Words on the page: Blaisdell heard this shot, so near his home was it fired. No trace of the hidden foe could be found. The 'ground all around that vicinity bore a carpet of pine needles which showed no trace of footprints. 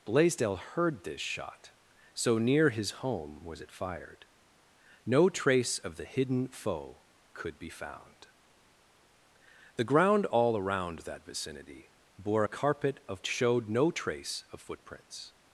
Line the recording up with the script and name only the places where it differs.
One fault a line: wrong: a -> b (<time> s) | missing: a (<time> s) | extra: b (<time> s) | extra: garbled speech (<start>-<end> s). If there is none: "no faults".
missing: pine needles which (13.3 s)